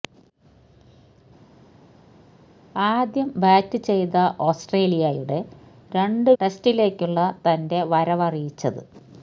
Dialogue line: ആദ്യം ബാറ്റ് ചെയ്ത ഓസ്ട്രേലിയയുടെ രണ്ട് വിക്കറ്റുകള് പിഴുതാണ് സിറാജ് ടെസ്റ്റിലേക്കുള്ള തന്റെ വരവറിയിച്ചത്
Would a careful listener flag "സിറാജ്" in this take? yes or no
yes